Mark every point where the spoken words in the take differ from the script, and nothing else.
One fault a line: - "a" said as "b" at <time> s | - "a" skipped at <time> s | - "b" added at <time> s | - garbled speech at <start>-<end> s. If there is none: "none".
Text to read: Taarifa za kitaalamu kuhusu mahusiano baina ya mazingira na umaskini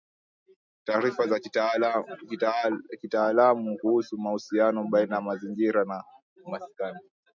none